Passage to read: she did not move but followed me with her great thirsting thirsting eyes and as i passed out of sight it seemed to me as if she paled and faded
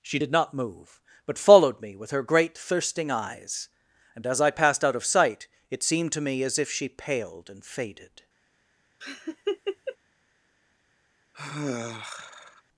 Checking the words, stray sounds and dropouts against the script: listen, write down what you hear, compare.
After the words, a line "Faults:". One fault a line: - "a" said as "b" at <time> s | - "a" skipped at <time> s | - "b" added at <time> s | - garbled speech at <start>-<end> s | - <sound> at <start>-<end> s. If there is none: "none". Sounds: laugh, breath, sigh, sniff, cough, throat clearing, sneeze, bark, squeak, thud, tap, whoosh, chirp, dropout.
she did not move but followed me with her great thirsting eyes and as i passed out of sight it seemed to me as if she paled and faded
Faults:
- "thirsting" skipped at 3.1 s
- laugh at 9.0-10.0 s
- sigh at 11.3-12.6 s